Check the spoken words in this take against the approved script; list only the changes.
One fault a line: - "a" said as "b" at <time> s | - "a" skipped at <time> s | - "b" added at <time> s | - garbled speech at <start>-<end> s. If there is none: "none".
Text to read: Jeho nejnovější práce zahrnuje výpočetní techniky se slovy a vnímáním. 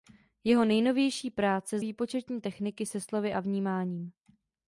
- "zahrnuje" skipped at 1.8 s